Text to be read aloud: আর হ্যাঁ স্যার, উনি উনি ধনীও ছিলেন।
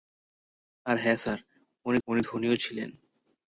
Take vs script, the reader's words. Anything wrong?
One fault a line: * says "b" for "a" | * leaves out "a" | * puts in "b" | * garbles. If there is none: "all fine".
all fine